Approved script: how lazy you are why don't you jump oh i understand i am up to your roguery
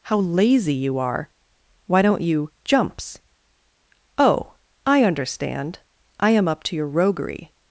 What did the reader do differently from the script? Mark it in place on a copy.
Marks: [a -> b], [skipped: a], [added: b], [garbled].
how lazy you are why don't you [jump -> jumps] oh i understand i am up to your roguery